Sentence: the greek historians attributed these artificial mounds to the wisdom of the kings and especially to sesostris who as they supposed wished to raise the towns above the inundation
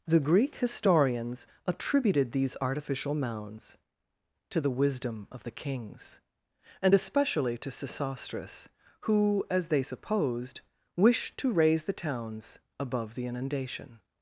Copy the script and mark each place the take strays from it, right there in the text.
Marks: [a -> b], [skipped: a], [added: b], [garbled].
the greek historians attributed these artificial mounds to the wisdom of the kings and especially to sesostris who as they supposed wished to raise the towns above the inundation